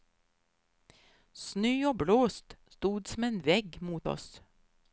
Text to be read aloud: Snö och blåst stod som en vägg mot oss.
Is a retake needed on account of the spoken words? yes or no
no